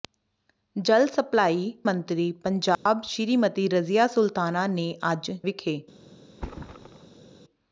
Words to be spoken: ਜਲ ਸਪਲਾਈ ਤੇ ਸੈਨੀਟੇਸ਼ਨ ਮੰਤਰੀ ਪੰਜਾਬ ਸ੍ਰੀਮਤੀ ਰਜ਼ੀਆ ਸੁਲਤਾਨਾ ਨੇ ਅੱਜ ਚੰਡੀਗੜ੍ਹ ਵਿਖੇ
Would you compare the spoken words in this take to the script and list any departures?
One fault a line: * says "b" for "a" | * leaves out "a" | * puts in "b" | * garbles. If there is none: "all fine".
* leaves out "ਤੇ ਸੈਨੀਟੇਸ਼ਨ"
* leaves out "ਚੰਡੀਗੜ੍ਹ"